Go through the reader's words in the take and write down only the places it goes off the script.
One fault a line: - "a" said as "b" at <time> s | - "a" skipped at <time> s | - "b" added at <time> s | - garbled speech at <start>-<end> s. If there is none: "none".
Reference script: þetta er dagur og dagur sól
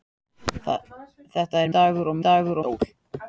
none